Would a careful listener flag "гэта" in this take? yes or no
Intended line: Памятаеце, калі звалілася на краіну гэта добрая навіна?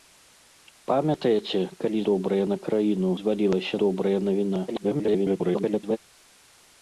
yes